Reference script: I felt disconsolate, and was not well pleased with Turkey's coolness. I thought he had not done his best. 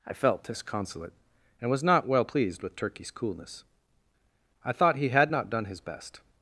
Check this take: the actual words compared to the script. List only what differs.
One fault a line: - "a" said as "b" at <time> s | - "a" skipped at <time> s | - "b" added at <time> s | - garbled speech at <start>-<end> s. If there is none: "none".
none